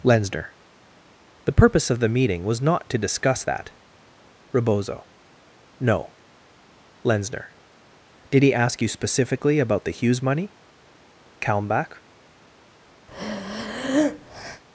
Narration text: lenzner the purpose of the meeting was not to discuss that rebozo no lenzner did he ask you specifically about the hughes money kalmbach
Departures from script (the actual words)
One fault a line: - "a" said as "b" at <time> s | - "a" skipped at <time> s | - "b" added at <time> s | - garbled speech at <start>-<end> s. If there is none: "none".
none